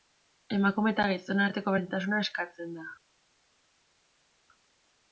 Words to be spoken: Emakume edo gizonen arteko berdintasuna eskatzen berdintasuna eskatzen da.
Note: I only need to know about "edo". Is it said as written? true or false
false